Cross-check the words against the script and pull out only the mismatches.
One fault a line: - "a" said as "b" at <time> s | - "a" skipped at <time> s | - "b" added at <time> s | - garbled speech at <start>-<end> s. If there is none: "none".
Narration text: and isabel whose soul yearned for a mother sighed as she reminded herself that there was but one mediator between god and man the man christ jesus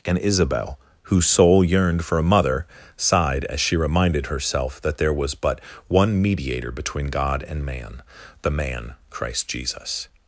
none